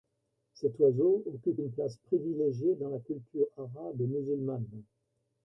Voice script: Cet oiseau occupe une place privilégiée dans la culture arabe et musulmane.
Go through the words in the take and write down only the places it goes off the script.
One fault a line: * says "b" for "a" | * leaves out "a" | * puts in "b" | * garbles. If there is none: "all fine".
all fine